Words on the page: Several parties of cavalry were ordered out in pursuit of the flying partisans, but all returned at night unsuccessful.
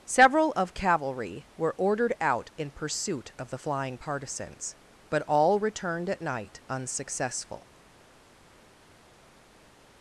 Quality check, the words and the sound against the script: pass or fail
fail